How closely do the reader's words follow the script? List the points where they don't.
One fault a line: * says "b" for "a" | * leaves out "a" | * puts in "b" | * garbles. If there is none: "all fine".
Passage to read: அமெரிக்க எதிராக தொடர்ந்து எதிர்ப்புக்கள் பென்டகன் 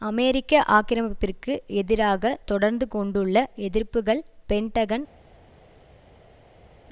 * puts in "ஆக்கிரமிப்பிற்கு"
* puts in "கொண்டுள்ள"